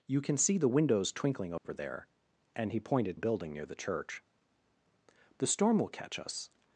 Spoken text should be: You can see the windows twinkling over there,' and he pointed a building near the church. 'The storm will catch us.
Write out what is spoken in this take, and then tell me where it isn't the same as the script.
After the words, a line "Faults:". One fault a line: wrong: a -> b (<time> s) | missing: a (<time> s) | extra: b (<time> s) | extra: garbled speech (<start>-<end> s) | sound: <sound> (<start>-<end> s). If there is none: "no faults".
You can see the windows twinkling over there,' and he pointed a building near the church. 'The storm will catch us.
Faults:
sound: dropout (1.6-1.6 s)